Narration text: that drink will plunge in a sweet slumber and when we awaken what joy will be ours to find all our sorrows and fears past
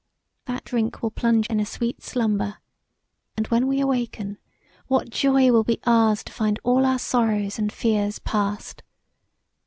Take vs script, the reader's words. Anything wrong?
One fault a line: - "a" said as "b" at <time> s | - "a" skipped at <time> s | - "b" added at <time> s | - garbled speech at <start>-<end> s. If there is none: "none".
none